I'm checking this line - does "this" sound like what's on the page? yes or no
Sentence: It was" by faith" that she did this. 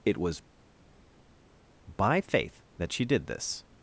yes